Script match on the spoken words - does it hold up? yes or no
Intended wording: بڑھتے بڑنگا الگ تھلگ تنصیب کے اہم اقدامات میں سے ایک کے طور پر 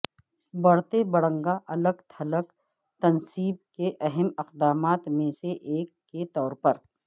yes